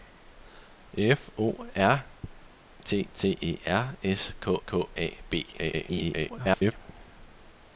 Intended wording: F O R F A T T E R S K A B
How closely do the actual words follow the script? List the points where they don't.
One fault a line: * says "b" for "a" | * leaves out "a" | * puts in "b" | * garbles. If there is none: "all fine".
* leaves out "F A"
* puts in "K"
* garbles